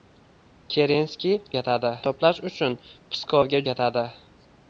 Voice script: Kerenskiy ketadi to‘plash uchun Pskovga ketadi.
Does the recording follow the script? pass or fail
pass